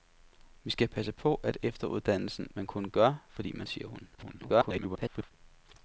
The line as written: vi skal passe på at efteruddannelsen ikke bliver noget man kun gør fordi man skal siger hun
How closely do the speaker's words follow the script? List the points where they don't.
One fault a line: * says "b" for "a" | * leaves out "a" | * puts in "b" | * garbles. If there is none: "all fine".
* leaves out "ikke bliver noget"
* leaves out "skal"
* garbles